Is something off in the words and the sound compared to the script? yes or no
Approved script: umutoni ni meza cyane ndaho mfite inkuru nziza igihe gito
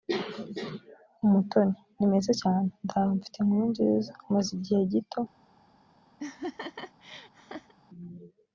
yes